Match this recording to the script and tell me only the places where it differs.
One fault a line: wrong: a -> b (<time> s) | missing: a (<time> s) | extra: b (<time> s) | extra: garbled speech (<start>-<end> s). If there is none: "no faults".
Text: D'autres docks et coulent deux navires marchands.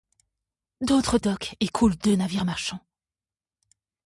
no faults